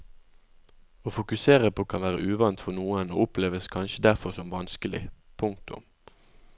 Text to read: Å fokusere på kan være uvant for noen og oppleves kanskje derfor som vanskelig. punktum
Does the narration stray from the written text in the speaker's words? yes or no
no